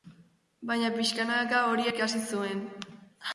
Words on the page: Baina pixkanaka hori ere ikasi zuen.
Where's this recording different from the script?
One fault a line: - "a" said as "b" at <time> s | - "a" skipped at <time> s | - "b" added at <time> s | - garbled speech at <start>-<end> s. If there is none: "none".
- "ere" skipped at 1.9 s